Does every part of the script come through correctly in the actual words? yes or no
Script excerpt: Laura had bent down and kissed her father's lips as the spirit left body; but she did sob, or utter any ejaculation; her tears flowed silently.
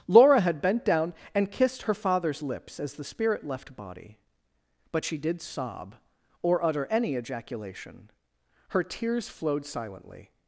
yes